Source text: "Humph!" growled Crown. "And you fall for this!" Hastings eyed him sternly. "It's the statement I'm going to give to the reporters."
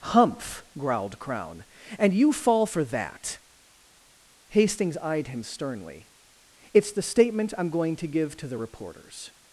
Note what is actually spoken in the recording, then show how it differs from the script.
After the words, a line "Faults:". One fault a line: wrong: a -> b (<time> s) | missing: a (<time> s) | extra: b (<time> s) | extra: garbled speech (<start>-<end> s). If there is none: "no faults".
"Humph!" growled Crown. "And you fall for that!" Hastings eyed him sternly. "It's the statement I'm going to give to the reporters."
Faults:
wrong: this -> that (2.9 s)